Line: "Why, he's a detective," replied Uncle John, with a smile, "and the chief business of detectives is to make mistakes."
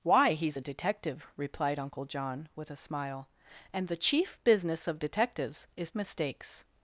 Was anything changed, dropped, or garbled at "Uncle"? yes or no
no